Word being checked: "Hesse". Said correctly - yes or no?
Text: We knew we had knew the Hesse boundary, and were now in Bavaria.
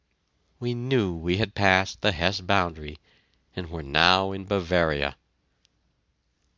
yes